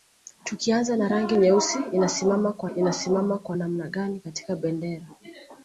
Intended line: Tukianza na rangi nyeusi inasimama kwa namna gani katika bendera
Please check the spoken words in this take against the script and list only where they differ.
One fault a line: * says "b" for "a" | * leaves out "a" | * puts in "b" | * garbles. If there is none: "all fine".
* puts in "inasimama kwa"